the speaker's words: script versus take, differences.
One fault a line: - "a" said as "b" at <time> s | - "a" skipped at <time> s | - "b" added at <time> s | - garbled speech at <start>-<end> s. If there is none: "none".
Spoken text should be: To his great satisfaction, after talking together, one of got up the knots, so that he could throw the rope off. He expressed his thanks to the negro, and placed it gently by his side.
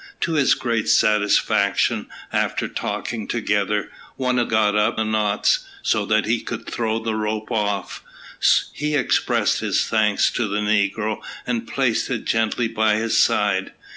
none